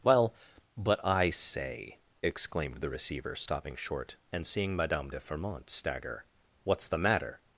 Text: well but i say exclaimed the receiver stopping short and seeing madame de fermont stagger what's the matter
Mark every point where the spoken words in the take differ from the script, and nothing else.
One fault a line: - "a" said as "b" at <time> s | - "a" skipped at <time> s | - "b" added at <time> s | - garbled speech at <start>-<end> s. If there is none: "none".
none